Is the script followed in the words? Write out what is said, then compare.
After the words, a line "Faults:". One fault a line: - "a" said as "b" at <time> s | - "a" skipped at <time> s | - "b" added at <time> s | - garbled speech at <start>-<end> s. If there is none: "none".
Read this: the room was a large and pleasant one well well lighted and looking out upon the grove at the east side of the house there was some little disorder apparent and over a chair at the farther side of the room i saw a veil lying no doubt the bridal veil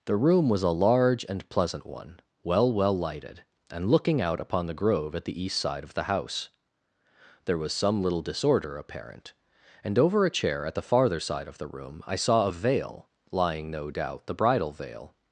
the room was a large and pleasant one well well lighted and looking out upon the grove at the east side of the house there was some little disorder apparent and over a chair at the farther side of the room i saw a veil lying no doubt the bridal veil
Faults:
none